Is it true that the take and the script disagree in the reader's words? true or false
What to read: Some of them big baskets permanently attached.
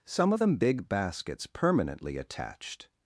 false